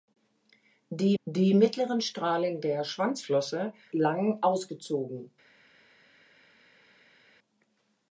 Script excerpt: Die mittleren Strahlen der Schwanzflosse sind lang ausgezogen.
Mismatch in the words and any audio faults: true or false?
true